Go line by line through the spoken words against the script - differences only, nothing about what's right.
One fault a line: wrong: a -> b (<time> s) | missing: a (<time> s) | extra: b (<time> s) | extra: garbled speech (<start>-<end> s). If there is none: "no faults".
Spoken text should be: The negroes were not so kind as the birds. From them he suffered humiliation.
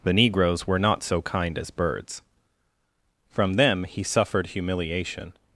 missing: the (1.7 s)